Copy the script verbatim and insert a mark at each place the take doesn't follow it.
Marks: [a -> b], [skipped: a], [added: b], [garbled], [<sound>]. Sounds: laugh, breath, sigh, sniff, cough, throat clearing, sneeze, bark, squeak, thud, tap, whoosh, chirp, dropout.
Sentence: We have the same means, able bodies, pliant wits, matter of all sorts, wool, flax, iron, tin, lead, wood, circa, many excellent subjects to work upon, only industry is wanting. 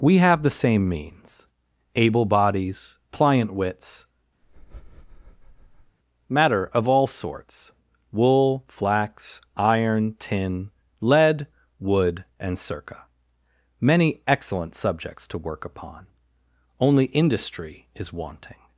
We have the same means, able bodies, pliant wits, [breath] matter of all sorts, wool, flax, iron, tin, lead, wood, [added: and] circa, many excellent subjects to work upon, only industry is wanting.